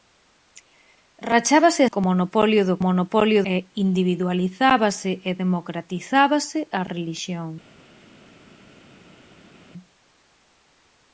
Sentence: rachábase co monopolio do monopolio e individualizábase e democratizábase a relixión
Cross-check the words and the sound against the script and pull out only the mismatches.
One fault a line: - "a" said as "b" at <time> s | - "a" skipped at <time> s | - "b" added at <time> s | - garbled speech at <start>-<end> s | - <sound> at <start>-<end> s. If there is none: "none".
none